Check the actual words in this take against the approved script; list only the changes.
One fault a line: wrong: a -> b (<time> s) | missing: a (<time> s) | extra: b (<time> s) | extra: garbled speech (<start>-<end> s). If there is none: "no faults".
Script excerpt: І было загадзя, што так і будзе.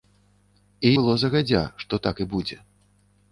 no faults